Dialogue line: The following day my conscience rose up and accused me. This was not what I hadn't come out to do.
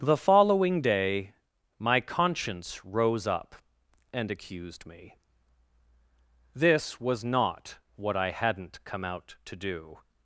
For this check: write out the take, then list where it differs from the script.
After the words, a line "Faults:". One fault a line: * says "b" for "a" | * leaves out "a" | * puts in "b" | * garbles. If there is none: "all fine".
The following day my conscience rose up and accused me. This was not what I hadn't come out to do.
Faults:
all fine